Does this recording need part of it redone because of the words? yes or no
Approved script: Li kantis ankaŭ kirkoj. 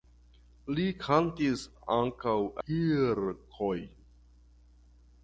no